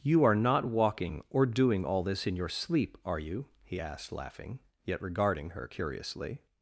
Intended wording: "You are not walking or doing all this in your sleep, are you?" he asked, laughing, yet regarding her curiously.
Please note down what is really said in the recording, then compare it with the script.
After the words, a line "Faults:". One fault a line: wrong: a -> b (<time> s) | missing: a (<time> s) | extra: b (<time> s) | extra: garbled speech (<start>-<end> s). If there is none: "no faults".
"You are not walking or doing all this in your sleep, are you?" he asked, laughing, yet regarding her curiously.
Faults:
no faults